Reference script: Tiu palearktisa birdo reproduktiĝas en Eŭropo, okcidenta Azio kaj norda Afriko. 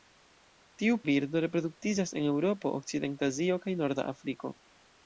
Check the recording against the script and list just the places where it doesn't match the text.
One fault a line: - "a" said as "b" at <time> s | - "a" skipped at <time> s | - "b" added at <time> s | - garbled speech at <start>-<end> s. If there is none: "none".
- "palearktisa" skipped at 0.9 s